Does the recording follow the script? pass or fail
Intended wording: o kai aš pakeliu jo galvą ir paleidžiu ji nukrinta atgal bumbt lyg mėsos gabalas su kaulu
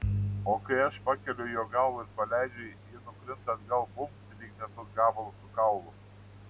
pass